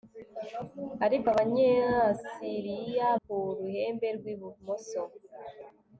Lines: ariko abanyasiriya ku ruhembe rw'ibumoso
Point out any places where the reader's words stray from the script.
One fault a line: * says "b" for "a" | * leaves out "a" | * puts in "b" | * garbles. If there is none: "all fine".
all fine